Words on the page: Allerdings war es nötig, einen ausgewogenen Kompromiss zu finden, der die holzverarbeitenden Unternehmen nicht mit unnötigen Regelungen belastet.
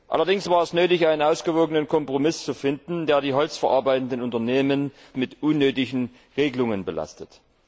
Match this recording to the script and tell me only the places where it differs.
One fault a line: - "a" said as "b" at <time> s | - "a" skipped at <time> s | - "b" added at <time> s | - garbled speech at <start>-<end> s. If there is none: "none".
- "nicht" skipped at 4.9 s